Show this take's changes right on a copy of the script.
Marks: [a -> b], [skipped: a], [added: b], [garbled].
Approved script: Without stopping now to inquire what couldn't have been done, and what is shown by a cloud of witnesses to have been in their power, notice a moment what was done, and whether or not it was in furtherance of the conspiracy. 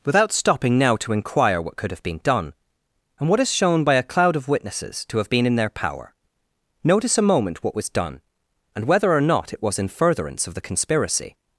Without stopping now to inquire what [couldn't -> could] have been done, and what is shown by a cloud of witnesses to have been in their power, notice a moment what was done, and whether or not it was in furtherance of the conspiracy.